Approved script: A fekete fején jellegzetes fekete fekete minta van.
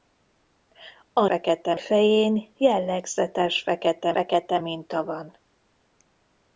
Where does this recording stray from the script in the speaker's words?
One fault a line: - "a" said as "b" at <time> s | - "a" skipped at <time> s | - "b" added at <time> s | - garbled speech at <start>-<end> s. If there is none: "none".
none